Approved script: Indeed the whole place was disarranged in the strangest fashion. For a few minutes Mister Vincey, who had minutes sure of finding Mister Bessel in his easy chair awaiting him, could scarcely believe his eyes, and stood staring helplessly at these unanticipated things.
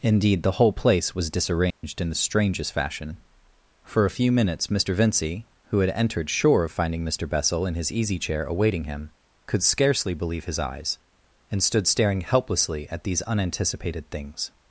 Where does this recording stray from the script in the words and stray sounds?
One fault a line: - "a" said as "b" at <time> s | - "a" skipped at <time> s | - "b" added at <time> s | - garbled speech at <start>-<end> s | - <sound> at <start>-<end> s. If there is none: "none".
- dropout at 1.7-1.8 s
- "minutes" said as "entered" at 5.9 s